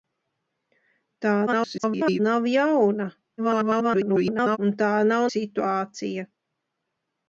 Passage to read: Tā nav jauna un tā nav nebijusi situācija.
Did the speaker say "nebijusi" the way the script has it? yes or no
no